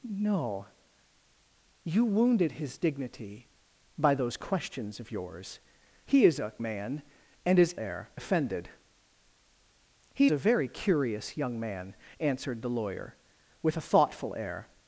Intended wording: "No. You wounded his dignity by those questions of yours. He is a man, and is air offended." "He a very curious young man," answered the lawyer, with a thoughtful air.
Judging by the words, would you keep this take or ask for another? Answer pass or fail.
pass